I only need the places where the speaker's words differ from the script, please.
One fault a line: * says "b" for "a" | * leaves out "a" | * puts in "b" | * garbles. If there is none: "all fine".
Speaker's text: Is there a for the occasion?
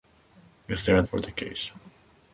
all fine